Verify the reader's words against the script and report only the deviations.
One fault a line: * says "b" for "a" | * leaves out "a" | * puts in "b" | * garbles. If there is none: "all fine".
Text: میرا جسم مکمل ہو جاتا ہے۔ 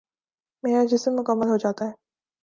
all fine